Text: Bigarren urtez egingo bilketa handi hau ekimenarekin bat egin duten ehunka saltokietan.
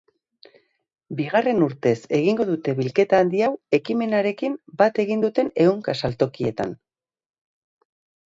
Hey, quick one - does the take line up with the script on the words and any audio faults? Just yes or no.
no